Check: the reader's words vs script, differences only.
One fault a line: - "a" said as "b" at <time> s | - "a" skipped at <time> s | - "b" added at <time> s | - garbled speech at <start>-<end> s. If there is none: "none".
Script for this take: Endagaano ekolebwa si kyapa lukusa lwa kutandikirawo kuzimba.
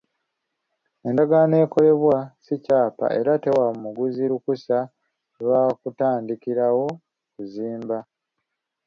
- "era tewa muguzi" added at 3.2 s